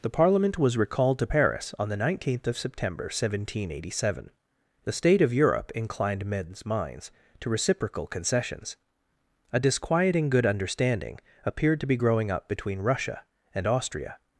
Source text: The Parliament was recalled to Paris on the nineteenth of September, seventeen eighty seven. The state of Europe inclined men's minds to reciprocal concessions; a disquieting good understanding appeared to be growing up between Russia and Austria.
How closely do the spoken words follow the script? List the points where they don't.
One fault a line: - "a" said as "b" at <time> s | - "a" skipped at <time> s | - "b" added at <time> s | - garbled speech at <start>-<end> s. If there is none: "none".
none